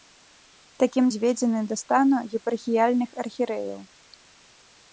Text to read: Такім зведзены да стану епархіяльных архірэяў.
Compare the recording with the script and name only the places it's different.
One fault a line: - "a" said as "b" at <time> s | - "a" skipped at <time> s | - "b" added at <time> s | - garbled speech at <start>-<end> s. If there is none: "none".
none